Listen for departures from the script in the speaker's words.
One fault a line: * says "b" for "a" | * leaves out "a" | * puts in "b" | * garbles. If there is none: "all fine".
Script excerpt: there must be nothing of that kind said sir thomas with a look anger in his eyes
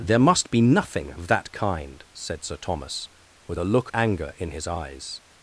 all fine